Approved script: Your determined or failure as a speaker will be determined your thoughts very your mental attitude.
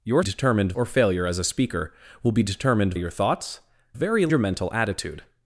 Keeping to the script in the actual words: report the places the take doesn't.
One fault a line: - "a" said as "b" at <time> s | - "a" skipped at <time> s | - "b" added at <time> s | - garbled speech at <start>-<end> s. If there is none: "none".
none